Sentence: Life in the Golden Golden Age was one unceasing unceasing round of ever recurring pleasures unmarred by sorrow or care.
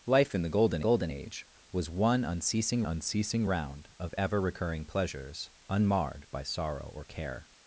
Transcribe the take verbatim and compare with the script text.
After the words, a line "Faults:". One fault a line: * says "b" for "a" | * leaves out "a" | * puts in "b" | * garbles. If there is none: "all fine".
Life in the Golden Golden Age was one unceasing unceasing round of ever recurring pleasures unmarred by sorrow or care.
Faults:
all fine